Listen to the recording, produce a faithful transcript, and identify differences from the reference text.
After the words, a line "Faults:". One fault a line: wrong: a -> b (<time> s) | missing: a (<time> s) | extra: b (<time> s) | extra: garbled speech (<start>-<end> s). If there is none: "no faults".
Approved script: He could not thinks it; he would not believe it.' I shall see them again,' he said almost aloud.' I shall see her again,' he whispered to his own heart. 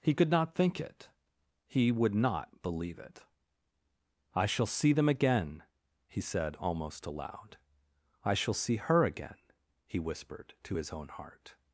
He could not think it; he would not believe it.' I shall see them again,' he said almost aloud.' I shall see her again,' he whispered to his own heart.
Faults:
wrong: thinks -> think (0.6 s)